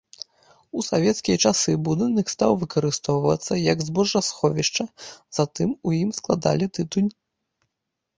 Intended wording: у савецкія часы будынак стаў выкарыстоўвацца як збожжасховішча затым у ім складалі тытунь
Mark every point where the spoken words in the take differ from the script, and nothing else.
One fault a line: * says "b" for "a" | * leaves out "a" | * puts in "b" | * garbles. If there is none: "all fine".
all fine